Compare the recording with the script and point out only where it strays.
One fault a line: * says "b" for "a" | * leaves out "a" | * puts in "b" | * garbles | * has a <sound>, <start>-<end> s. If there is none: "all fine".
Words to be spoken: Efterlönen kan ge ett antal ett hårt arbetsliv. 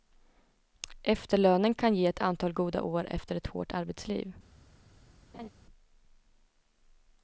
* puts in "goda år efter"
* has a laugh, 5.3-5.5 s